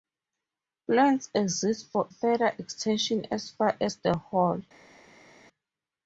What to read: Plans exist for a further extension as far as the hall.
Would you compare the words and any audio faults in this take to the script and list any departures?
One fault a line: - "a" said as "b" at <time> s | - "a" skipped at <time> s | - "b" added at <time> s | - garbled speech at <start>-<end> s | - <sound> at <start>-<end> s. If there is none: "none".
- "a" skipped at 2.1 s